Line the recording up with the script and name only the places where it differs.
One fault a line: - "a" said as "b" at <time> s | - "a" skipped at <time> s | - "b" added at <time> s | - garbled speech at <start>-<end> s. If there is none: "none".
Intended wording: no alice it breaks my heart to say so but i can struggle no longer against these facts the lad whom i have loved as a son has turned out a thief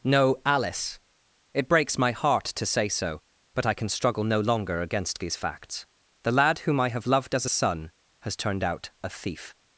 none